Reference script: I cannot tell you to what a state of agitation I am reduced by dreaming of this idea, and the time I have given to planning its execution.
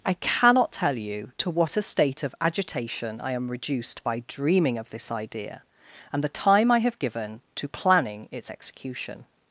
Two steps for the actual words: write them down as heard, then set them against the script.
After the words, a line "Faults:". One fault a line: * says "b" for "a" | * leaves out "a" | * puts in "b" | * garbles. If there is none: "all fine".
I cannot tell you to what a state of agitation I am reduced by dreaming of this idea, and the time I have given to planning its execution.
Faults:
all fine